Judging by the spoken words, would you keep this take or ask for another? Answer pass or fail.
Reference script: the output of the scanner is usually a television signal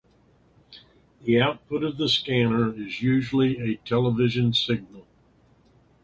pass